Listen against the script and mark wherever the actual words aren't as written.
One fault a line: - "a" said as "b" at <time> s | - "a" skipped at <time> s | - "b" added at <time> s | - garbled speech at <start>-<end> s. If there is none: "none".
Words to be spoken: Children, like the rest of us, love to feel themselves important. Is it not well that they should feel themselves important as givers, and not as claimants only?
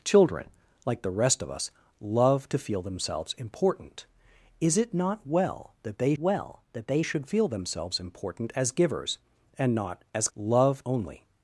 - "well that they" added at 6.2 s
- "claimants" said as "love" at 10.3 s